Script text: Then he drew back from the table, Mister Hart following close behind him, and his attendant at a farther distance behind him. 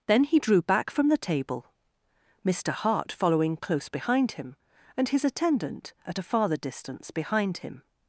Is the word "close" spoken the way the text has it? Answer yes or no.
yes